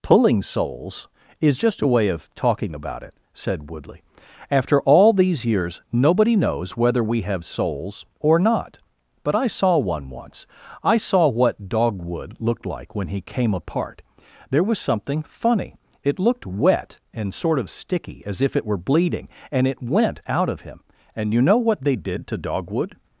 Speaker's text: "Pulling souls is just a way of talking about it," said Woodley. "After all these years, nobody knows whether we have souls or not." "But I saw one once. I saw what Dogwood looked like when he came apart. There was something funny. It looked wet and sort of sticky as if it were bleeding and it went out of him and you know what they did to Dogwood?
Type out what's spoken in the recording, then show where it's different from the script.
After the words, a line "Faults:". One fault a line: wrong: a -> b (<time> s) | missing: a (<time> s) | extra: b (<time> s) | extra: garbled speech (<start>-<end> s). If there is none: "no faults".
"Pulling souls is just a way of talking about it," said Woodley. "After all these years, nobody knows whether we have souls or not." "But I saw one once. I saw what Dogwood looked like when he came apart. There was something funny. It looked wet and sort of sticky as if it were bleeding and it went out of him and you know what they did to Dogwood?
Faults:
no faults